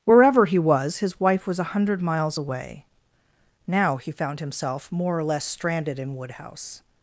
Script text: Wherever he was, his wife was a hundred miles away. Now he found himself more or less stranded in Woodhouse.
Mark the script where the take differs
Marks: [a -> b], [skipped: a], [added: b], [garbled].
Wherever he was, his wife was a hundred miles away. Now he found himself more or less stranded in Woodhouse.